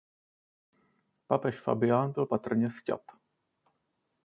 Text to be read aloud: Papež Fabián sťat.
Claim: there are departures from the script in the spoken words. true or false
true